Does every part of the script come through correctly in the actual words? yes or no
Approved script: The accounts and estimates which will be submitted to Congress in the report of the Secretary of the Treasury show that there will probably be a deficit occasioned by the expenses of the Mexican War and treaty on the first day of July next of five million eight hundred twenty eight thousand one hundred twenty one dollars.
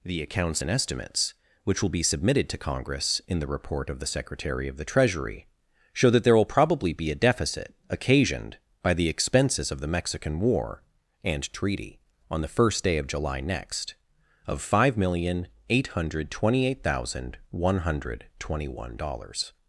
yes